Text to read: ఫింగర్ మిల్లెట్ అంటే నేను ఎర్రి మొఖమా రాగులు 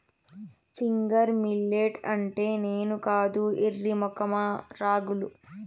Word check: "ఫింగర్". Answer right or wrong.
right